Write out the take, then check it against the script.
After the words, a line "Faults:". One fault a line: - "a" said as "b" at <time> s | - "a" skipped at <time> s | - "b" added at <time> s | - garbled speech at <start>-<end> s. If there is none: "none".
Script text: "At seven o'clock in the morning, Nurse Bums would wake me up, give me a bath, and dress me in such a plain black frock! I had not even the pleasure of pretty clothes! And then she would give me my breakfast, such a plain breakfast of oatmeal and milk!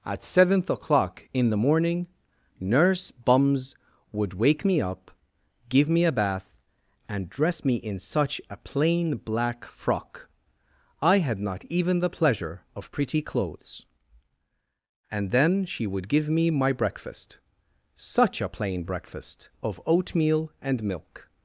"At seventh o'clock in the morning, Nurse Bums would wake me up, give me a bath, and dress me in such a plain black frock! I had not even the pleasure of pretty clothes! And then she would give me my breakfast, such a plain breakfast of oatmeal and milk!
Faults:
- "seven" said as "seventh" at 0.2 s